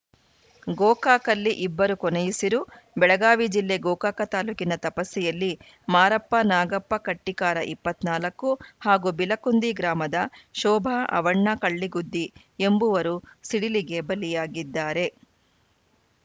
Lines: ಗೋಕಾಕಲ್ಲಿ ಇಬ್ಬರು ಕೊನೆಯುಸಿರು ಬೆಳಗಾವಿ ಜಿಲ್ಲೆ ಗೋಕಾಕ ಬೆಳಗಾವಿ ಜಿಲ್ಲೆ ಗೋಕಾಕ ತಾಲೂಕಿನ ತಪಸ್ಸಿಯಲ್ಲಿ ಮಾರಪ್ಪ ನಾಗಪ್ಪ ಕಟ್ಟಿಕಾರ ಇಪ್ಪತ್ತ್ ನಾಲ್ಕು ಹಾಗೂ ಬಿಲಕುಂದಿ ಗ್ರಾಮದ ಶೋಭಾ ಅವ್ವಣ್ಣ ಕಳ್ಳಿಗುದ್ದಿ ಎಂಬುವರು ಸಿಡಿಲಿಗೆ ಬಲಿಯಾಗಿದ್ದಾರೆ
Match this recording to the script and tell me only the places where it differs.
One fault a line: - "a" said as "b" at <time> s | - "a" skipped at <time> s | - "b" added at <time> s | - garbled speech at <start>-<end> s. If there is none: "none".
- "ಬೆಳಗಾವಿ ಜಿಲ್ಲೆ ಗೋಕಾಕ" skipped at 4.2 s